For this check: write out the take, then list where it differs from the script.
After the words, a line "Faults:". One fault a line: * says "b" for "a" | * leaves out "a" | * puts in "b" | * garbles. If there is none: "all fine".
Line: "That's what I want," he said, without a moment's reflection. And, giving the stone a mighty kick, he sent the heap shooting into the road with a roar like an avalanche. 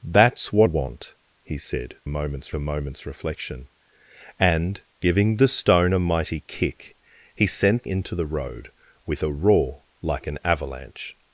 "That's what want," he said, moment's a moment's reflection. And, giving the stone a mighty kick, he sent into the road with a roar like an avalanche.
Faults:
* leaves out "I"
* says "moment's" for "without"
* leaves out "the heap shooting"